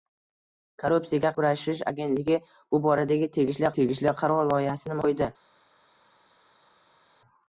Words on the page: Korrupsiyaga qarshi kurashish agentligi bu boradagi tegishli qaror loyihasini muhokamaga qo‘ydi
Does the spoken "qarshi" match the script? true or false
false